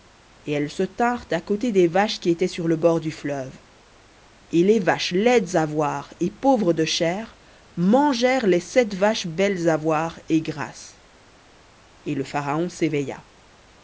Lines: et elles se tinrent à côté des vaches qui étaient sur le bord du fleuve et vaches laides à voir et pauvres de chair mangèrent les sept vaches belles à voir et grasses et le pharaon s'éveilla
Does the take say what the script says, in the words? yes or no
no